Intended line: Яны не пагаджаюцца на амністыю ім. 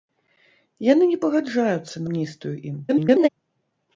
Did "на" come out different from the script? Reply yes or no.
yes